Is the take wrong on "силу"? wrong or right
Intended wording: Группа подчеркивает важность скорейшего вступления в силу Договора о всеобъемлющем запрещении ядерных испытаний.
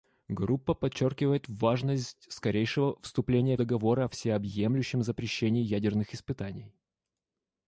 wrong